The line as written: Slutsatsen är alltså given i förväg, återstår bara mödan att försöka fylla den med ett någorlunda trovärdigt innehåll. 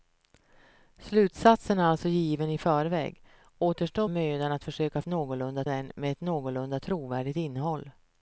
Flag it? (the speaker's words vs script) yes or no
yes